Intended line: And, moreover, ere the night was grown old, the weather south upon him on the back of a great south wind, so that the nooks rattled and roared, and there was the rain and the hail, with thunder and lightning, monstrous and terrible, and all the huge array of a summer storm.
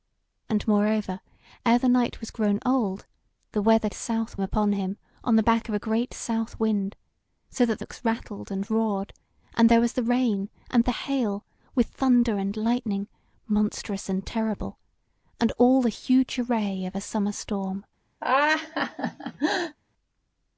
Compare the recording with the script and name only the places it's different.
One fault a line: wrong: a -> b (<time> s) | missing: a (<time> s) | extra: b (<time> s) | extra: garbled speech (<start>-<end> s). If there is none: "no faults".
no faults